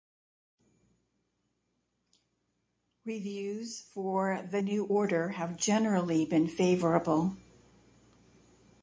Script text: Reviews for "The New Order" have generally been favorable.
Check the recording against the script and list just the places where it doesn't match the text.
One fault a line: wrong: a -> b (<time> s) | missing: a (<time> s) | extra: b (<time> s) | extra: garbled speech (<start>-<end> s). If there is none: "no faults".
no faults